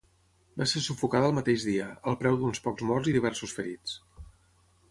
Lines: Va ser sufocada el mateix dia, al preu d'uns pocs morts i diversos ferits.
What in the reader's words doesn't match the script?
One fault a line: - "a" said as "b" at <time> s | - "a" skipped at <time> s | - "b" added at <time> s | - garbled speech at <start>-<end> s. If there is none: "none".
none